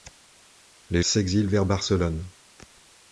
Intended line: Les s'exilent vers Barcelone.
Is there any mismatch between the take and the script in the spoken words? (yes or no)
no